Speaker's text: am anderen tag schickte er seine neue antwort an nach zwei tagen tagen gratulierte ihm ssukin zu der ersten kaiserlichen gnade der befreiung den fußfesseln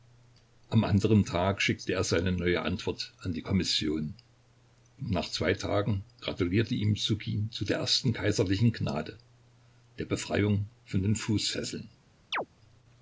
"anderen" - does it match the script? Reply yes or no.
yes